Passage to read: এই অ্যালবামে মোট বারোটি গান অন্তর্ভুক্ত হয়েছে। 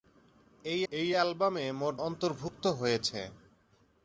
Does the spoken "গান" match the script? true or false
false